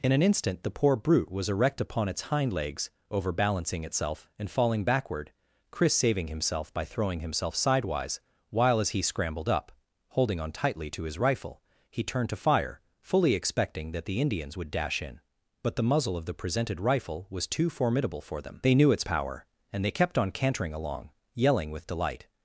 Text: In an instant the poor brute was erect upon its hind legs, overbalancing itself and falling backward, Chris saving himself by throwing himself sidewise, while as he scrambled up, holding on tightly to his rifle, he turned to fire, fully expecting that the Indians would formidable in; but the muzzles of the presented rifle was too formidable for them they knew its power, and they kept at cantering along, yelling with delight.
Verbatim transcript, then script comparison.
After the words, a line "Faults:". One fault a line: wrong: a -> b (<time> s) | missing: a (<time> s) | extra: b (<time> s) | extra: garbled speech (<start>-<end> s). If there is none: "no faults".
In an instant the poor brute was erect upon its hind legs, overbalancing itself and falling backward, Chris saving himself by throwing himself sidewise, while as he scrambled up, holding on tightly to his rifle, he turned to fire, fully expecting that the Indians would dash in; but the muzzle of the presented rifle was too formidable for them they knew its power, and they kept on cantering along, yelling with delight.
Faults:
wrong: formidable -> dash (14.7 s)
wrong: muzzles -> muzzle (15.8 s)
wrong: at -> on (20.2 s)